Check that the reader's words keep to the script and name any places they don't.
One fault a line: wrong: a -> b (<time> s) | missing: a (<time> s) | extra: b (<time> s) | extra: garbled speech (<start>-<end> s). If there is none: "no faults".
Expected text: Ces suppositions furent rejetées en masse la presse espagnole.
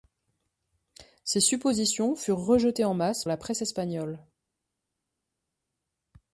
no faults